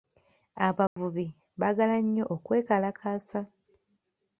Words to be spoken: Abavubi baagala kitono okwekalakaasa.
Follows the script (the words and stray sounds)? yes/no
no